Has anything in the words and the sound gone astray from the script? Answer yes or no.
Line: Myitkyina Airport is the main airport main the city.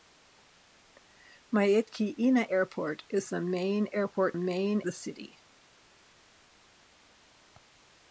no